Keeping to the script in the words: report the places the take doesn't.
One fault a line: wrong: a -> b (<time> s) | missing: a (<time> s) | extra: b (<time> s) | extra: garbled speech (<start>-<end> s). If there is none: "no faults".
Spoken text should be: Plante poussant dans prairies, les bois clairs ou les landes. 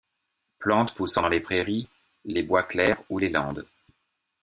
extra: les (1.3 s)